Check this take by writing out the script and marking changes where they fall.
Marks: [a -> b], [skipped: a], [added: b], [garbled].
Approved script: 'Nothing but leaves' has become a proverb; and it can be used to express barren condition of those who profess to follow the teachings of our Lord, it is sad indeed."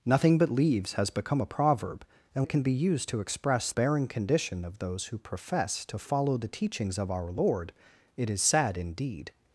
'Nothing but leaves' has become a proverb; and it can be used to express barren condition of those who profess to follow the teachings of our Lord, it is sad indeed."